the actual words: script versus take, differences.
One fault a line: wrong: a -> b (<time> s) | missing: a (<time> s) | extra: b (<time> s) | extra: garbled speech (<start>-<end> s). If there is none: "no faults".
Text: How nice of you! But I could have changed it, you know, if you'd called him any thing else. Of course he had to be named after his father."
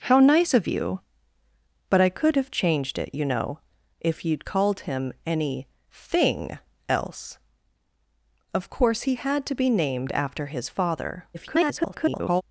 extra: garbled speech (11.3-12.4 s)